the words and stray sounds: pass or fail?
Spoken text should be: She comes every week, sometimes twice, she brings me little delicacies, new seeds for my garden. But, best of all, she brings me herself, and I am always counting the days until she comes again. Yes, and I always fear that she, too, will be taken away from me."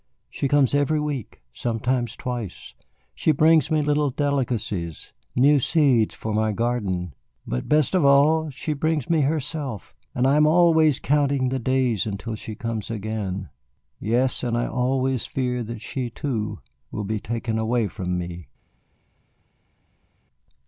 pass